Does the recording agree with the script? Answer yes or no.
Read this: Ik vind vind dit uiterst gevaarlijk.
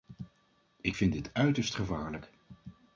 no